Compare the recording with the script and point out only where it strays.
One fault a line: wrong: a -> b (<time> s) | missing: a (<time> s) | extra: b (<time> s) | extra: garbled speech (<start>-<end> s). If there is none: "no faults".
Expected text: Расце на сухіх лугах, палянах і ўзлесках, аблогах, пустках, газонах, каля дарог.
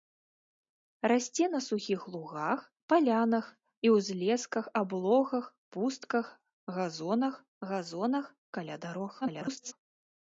extra: газонах (7.7 s)
extra: garbled speech (9.2-9.7 s)